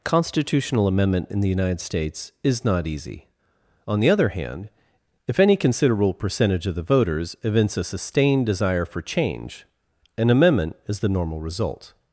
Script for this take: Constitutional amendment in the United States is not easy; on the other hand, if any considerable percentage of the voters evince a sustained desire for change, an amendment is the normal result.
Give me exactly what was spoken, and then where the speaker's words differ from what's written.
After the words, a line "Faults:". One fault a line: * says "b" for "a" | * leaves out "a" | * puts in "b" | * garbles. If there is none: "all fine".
Constitutional amendment in the United States is not easy; on the other hand, if any considerable percentage of the voters evince a sustained desire for change, an amendment is the normal result.
Faults:
all fine